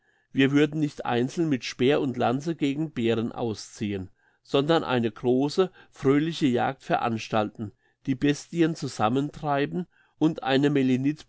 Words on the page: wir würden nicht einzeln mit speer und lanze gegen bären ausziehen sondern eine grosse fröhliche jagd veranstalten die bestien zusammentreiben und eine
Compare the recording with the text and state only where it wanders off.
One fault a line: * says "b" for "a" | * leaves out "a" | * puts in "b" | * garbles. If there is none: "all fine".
all fine